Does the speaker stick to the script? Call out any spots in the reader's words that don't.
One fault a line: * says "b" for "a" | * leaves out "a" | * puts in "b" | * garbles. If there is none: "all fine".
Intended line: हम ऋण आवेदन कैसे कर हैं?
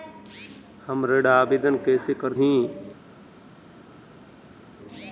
all fine